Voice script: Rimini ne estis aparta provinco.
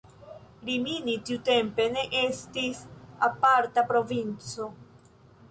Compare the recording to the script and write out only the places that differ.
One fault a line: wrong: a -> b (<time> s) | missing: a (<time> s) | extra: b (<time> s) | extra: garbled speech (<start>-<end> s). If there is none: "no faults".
extra: tiutempe (1.3 s)